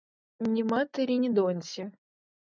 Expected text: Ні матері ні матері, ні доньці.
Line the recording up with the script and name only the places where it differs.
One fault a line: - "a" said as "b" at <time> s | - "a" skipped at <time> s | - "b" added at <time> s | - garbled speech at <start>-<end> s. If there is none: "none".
- "матері ні" skipped at 1.3 s